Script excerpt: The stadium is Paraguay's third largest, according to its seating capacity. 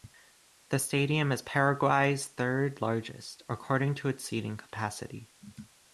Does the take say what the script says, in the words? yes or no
yes